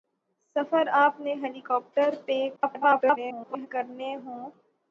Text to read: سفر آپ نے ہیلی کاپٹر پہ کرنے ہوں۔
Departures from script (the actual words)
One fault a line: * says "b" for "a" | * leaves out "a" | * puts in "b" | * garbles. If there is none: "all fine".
* garbles